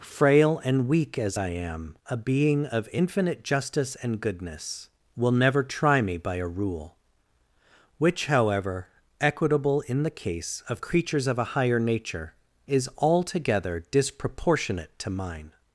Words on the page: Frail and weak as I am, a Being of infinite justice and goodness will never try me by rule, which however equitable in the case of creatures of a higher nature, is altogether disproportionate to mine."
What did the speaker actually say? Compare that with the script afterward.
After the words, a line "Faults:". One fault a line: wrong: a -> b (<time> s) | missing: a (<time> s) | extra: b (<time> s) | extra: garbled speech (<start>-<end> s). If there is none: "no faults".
Frail and weak as I am, a Being of infinite justice and goodness will never try me by a rule, which however equitable in the case of creatures of a higher nature, is altogether disproportionate to mine."
Faults:
extra: a (6.4 s)